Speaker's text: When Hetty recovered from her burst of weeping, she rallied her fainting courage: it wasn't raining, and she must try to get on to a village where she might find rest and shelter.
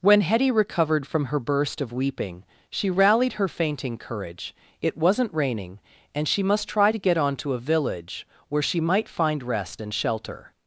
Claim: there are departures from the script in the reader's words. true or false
false